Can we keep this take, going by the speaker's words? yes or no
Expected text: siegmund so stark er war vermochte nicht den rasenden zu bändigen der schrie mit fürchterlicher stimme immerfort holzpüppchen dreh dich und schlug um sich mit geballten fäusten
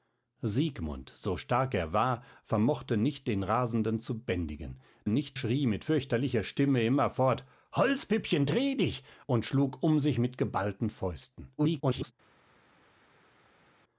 no